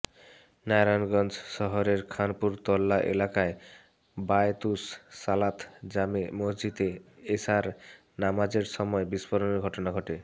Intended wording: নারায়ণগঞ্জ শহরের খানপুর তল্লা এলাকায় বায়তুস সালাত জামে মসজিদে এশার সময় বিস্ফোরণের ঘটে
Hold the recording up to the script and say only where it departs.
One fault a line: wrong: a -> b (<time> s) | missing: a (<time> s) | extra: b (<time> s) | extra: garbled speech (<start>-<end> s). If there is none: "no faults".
extra: নামাজের (8.2 s)
extra: ঘটনা (9.7 s)